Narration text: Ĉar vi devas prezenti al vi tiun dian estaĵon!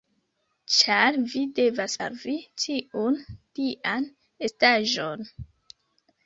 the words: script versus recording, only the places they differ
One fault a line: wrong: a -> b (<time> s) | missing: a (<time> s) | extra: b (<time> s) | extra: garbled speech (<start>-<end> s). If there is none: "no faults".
missing: prezenti (2.0 s)